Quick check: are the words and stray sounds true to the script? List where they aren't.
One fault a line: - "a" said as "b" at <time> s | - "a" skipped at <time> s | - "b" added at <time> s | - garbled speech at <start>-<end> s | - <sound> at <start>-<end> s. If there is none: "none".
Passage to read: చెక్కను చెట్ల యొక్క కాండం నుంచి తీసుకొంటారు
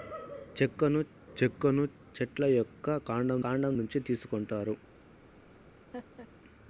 - "చెక్కను" added at 1.4 s
- "కాండం" added at 3.4 s
- laugh at 5.9-6.3 s